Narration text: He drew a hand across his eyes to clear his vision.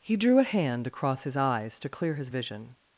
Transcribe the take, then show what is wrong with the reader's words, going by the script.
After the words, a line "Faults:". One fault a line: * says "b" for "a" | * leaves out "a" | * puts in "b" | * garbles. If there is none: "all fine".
He drew a hand across his eyes to clear his vision.
Faults:
all fine